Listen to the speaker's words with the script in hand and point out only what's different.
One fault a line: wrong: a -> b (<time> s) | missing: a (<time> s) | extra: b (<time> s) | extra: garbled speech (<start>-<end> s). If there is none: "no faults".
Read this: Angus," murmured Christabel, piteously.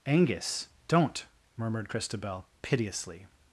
extra: don't (0.9 s)